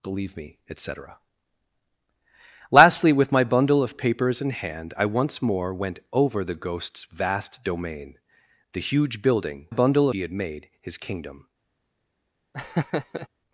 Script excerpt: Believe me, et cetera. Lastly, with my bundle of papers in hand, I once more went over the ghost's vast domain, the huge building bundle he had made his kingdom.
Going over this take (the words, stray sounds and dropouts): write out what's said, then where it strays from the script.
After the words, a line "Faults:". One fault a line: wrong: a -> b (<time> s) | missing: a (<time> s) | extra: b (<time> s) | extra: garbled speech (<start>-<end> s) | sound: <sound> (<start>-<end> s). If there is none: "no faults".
Believe me, et cetera. Lastly, with my bundle of papers in hand, I once more went over the ghost's vast domain, the huge building bundle he had made his kingdom.
Faults:
sound: laugh (12.5-13.3 s)